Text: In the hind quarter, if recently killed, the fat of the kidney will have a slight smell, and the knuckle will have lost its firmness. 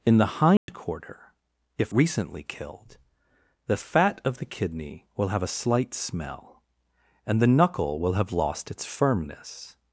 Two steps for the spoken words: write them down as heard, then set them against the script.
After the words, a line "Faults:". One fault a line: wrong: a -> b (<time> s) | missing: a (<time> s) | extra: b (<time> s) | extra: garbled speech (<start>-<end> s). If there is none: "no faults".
In the hind quarter, if recently killed, the fat of the kidney will have a slight smell, and the knuckle will have lost its firmness.
Faults:
no faults